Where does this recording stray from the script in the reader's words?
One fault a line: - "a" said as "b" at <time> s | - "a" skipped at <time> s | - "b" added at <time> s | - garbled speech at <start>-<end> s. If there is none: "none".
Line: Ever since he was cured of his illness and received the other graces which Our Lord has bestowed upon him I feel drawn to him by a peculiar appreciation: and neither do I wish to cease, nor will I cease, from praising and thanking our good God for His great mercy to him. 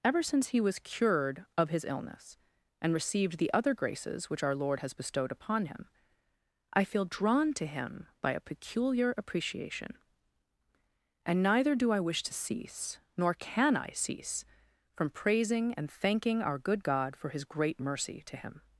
- "will" said as "can" at 13.3 s